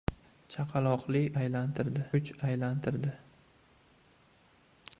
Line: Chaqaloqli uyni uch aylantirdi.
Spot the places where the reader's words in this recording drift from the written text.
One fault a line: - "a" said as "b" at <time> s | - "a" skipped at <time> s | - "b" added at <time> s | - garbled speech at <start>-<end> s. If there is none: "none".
- "uyni" said as "aylantirdi" at 1.4 s